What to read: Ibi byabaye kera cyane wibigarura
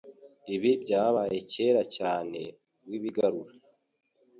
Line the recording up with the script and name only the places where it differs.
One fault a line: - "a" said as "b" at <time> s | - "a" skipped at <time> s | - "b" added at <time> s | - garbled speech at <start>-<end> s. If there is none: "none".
none